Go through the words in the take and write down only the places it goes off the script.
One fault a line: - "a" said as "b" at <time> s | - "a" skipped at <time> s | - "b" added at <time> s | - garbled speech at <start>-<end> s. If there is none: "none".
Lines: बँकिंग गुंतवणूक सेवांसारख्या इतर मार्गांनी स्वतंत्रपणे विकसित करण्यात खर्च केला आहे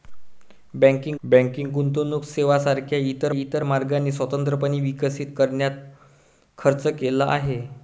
- "बँकिंग" added at 1.2 s
- "इतर" added at 3.4 s